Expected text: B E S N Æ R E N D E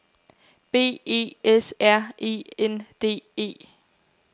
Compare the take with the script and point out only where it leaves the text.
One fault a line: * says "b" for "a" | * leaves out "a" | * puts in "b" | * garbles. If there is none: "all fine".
* leaves out "N Æ"